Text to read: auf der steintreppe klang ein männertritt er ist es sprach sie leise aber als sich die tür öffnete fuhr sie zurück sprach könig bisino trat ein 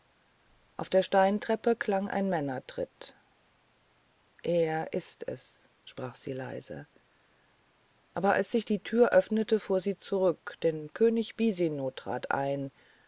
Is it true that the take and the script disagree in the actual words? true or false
true